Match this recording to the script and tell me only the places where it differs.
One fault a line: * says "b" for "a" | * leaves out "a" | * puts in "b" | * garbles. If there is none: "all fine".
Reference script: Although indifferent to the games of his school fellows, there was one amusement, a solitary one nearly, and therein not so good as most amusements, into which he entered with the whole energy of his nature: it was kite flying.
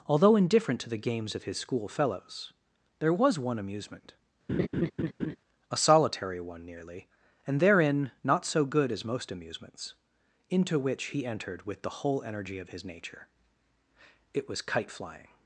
all fine